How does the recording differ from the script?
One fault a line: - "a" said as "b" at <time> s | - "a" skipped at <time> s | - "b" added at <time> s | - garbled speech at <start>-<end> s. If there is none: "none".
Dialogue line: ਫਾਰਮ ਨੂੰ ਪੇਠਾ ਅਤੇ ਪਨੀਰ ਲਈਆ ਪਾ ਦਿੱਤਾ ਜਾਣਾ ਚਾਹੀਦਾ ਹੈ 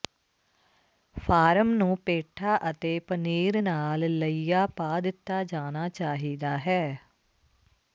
- "ਨਾਲ" added at 3.6 s